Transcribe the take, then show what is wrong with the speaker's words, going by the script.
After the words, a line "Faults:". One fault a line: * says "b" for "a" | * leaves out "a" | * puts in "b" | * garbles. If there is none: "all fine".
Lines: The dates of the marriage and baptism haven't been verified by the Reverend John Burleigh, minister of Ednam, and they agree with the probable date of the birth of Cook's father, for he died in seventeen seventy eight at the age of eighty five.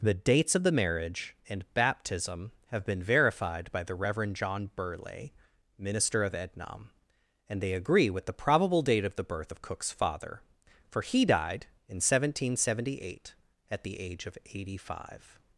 The dates of the marriage and baptism have been verified by the Reverend John Burleigh, minister of Ednam, and they agree with the probable date of the birth of Cook's father, for he died in seventeen seventy eight at the age of eighty five.
Faults:
* says "have" for "haven't"